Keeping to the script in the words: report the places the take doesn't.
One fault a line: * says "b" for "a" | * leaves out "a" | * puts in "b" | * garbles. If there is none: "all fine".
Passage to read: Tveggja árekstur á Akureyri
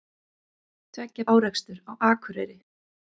all fine